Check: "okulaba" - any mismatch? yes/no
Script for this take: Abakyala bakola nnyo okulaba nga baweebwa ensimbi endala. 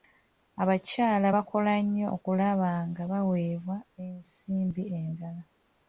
no